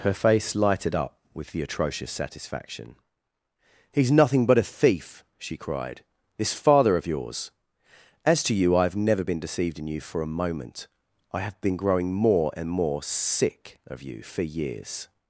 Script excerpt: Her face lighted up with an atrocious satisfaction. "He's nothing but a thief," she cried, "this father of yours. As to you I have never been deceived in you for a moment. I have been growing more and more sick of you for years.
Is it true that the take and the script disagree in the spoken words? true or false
true